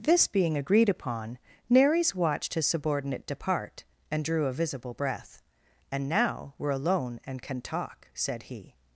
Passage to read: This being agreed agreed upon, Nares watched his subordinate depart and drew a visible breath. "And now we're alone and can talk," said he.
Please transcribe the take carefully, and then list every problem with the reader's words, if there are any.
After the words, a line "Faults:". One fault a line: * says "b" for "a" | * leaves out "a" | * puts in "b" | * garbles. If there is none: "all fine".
This being agreed upon, Nares watched his subordinate depart and drew a visible breath. "And now we're alone and can talk," said he.
Faults:
* leaves out "agreed"